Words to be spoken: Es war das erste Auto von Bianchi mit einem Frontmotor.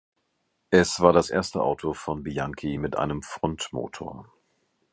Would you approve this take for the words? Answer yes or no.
yes